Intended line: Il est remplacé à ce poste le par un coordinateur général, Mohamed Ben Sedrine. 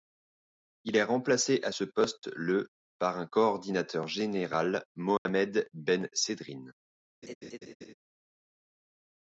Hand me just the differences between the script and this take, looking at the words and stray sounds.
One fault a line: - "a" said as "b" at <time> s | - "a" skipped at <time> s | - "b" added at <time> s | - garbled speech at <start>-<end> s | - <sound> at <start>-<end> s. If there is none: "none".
- dropout at 5.2-5.3 s
- laugh at 7.2-7.9 s